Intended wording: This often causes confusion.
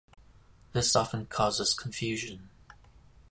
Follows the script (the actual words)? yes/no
yes